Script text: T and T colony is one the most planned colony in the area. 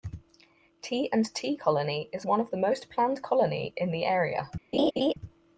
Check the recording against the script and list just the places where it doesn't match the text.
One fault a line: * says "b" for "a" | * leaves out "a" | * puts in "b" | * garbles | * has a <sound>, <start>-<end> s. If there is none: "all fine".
* puts in "of"
* has a laugh, 4.7-5.1 s